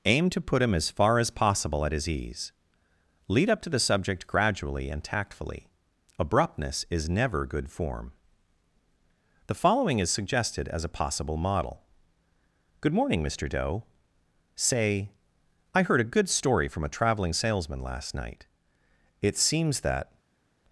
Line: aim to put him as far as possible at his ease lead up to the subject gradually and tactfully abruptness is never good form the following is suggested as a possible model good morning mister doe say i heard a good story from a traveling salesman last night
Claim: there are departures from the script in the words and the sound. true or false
true